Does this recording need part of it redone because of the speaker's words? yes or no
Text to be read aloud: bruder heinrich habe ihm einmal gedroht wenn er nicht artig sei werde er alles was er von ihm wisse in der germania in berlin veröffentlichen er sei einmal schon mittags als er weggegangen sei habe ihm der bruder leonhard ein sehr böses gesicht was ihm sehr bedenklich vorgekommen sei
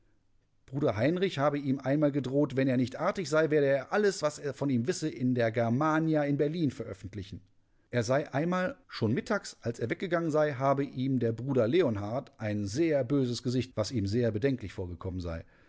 no